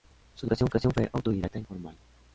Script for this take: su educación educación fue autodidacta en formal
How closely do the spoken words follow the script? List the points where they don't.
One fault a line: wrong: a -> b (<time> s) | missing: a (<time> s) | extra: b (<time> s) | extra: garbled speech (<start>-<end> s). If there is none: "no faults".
no faults